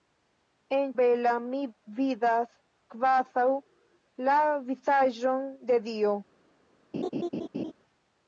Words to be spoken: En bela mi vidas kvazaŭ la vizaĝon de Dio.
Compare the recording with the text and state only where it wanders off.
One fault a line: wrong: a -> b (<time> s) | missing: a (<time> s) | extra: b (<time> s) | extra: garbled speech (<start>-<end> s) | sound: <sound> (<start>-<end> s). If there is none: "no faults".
sound: laugh (6.9-7.7 s)